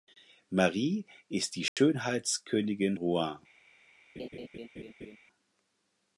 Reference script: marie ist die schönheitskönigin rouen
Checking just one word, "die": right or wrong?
right